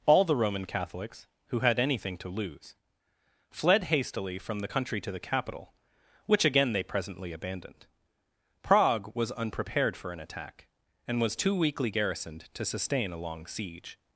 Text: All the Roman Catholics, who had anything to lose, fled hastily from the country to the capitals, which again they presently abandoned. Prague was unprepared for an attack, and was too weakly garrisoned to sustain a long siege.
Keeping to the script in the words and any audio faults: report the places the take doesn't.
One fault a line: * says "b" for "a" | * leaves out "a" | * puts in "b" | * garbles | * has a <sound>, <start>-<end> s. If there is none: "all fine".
* says "capital" for "capitals"